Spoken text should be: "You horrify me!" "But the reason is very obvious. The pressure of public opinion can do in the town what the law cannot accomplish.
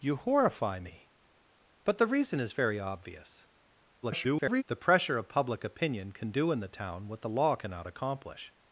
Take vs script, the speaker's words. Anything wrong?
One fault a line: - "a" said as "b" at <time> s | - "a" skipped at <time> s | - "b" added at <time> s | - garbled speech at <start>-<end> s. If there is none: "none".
- garbled speech at 4.0-4.6 s